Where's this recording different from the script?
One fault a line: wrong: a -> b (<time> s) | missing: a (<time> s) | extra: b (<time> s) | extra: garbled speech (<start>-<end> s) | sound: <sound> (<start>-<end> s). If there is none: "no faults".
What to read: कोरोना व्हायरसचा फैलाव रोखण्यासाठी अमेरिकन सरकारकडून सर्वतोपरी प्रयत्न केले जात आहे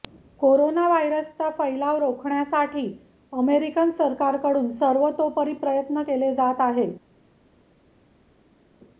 no faults